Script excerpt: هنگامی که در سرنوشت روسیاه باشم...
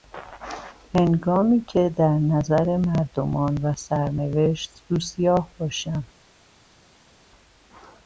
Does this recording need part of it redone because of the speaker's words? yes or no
yes